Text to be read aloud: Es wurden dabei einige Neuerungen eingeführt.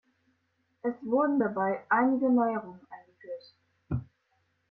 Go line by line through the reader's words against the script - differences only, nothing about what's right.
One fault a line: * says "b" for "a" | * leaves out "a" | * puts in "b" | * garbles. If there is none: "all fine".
all fine